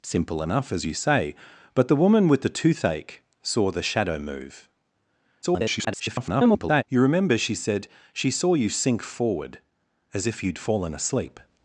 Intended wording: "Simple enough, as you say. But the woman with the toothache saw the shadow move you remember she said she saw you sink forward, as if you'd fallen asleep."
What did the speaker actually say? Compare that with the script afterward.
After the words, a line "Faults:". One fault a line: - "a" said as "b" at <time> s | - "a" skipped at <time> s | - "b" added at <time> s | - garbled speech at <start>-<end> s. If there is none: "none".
"Simple enough, as you say. But the woman with the toothache saw the shadow move [garbled] you remember she said she saw you sink forward, as if you'd fallen asleep."
Faults:
- garbled speech at 5.4-6.8 s